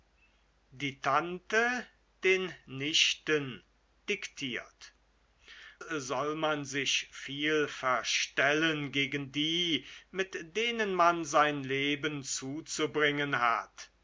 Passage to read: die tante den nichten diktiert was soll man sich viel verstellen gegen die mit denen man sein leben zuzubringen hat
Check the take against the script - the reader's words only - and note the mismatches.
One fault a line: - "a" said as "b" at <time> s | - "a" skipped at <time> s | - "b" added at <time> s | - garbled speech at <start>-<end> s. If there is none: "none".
- "was" skipped at 5.0 s